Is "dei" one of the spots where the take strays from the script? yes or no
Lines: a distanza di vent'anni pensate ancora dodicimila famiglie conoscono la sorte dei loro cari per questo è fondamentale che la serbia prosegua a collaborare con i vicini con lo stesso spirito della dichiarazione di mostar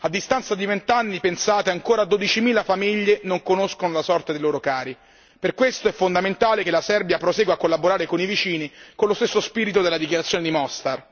no